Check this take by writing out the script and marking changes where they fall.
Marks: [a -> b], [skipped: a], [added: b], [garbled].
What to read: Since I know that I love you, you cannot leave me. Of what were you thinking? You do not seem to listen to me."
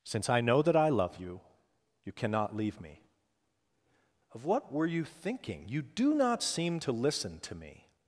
Since I know that I love you, you cannot leave me. Of what were you thinking? You do not seem to listen to me."